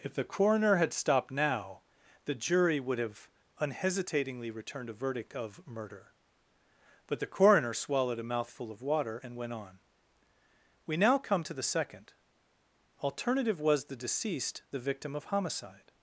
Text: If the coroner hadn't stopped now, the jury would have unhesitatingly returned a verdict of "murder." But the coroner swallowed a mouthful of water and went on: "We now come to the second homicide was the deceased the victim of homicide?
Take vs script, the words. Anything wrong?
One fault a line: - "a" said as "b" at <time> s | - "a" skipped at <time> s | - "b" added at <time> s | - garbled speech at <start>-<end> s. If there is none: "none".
- "hadn't" said as "had" at 0.8 s
- "homicide" said as "alternative" at 13.0 s